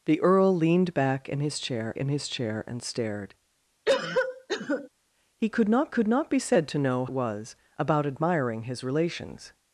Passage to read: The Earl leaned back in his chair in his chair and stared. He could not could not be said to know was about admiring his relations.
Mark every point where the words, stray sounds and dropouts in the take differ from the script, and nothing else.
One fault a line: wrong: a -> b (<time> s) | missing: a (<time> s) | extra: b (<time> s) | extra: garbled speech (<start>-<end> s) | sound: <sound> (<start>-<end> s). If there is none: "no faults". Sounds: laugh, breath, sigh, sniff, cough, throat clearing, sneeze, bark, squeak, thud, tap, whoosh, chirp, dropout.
sound: cough (3.9-4.9 s)